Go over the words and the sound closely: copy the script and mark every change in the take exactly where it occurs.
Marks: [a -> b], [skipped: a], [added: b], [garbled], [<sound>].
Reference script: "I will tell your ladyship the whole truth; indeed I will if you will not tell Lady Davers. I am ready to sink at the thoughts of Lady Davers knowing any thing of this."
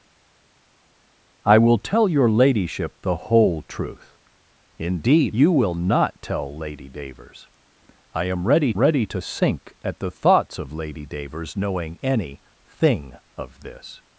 "I will tell your ladyship the whole truth; indeed [skipped: I will if] you will not tell Lady Davers. I am ready [added: ready] to sink at the thoughts of Lady Davers knowing any thing of this."